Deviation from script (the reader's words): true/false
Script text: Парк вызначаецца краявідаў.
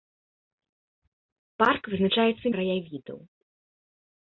false